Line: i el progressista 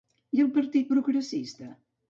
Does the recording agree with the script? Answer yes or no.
no